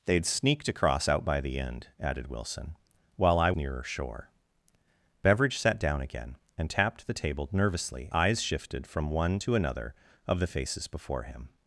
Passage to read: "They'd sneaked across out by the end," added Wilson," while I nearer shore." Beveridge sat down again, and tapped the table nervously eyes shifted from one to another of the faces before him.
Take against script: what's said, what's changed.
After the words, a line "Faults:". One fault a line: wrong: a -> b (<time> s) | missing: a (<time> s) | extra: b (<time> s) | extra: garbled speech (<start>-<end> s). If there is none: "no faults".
"They'd sneaked across out by the end," added Wilson," while I nearer shore." Beveridge sat down again, and tapped the table nervously eyes shifted from one to another of the faces before him.
Faults:
no faults